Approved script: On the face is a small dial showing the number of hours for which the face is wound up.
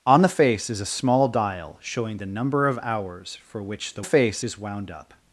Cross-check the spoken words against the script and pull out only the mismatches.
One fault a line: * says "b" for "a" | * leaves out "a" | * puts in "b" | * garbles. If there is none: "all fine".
all fine